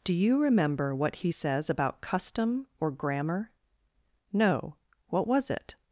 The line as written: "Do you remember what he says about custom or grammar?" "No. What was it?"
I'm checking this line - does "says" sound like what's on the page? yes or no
yes